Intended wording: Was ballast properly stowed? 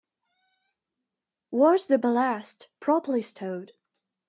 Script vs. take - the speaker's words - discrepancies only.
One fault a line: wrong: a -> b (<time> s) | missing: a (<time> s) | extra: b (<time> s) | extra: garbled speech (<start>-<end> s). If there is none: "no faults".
extra: the (1.9 s)